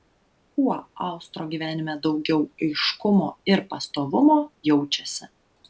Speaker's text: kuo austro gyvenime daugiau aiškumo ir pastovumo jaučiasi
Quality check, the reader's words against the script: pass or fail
pass